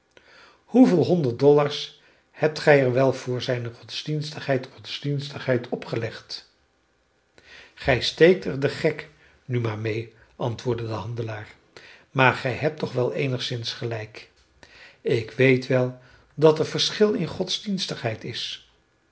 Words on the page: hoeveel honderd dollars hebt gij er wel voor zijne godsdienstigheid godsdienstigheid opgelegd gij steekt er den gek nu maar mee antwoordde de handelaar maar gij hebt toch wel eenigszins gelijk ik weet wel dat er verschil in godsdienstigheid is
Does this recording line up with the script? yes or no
yes